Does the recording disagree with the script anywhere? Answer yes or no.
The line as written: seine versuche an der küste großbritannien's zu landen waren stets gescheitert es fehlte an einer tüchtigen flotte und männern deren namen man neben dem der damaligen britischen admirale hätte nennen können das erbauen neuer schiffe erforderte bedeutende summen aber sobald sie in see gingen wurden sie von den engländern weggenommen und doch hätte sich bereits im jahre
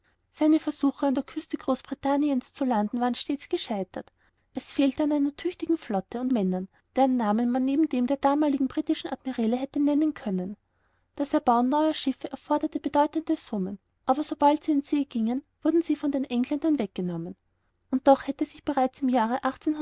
no